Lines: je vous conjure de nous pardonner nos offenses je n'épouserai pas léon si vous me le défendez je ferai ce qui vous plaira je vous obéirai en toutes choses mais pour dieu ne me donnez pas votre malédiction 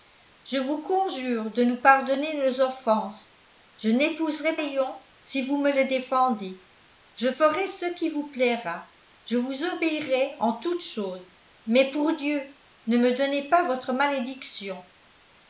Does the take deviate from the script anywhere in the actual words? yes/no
yes